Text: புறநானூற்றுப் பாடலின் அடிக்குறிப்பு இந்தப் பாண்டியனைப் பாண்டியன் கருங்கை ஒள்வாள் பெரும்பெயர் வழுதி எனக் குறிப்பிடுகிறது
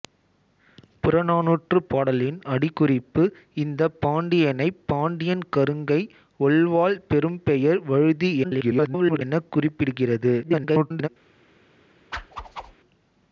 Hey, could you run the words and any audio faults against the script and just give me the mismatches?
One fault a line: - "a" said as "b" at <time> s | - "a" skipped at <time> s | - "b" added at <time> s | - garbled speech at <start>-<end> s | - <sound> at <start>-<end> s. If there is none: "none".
- garbled speech at 8.4-9.2 s
- garbled speech at 10.4-11.1 s
- whoosh at 12.1-12.8 s